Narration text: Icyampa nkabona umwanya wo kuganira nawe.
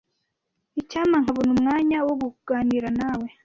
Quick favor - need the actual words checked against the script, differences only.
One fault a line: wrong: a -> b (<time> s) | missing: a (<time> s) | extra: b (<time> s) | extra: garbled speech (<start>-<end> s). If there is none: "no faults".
no faults